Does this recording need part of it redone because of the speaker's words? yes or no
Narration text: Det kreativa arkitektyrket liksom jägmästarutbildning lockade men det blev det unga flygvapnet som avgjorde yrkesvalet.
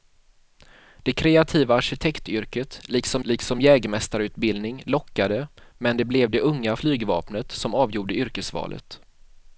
yes